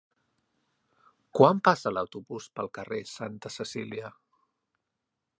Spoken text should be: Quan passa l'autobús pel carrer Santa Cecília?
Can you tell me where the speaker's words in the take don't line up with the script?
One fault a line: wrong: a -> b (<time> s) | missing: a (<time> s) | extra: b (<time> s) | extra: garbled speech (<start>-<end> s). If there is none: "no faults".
no faults